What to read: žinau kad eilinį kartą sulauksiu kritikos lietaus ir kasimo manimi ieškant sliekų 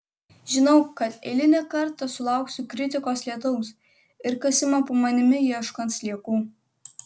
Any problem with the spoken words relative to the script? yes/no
yes